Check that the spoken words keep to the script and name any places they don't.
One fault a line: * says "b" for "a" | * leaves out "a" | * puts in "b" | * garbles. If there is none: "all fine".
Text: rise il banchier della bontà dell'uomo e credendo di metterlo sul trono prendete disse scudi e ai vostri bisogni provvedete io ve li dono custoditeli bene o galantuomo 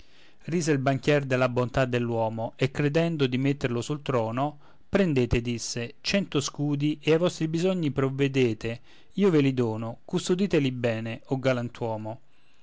* puts in "cento"